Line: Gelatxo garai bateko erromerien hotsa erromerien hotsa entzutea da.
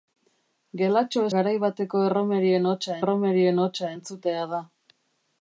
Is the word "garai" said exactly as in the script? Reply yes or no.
yes